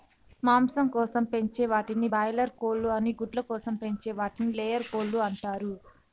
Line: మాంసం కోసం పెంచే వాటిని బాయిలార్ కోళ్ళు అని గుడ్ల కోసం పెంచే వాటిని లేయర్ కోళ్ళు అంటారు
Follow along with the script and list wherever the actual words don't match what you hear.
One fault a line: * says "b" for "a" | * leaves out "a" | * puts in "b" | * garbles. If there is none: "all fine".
all fine